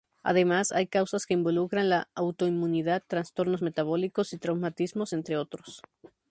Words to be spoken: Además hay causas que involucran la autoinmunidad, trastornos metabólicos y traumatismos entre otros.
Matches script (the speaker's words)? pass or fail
pass